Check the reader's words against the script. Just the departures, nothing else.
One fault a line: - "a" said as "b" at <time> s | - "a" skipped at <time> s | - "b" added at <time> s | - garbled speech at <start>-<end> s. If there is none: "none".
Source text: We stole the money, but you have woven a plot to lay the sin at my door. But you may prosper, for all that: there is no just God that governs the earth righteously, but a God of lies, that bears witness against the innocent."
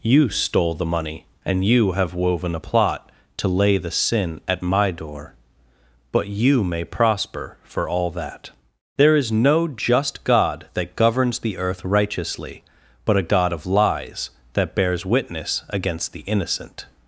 - "We" said as "You" at 0.0 s
- "but" said as "and" at 1.4 s